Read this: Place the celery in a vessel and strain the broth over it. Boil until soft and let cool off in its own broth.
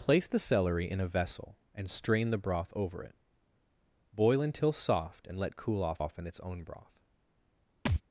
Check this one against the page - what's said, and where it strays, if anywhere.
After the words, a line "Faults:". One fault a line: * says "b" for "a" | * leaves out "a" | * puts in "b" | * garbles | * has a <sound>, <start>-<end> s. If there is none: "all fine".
Place the celery in a vessel and strain the broth over it. Boil until soft and let cool off off in its own broth.
Faults:
* puts in "off"
* has a thud, 7.9-8.0 s